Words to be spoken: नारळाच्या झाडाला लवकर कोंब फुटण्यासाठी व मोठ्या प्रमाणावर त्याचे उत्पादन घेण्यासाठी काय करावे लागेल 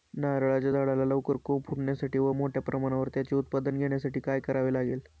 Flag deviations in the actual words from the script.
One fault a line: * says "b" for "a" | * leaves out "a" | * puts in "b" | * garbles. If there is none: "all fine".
all fine